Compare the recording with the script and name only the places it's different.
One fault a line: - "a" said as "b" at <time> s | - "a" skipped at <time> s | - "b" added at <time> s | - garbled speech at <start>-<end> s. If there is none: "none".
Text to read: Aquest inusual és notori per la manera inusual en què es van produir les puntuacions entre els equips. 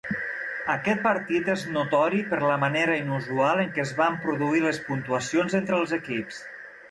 - "inusual" said as "partit" at 1.1 s